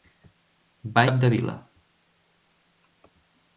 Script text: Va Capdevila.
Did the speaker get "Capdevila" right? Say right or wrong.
right